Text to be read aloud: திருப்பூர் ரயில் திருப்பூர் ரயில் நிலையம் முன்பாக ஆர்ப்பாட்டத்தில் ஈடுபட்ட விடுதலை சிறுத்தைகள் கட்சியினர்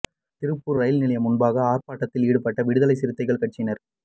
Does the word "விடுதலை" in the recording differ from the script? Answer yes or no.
no